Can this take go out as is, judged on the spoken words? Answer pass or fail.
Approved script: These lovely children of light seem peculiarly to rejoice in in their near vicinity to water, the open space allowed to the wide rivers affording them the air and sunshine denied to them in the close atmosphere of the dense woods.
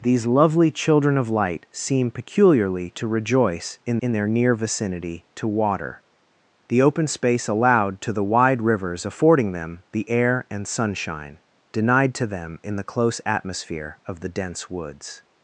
pass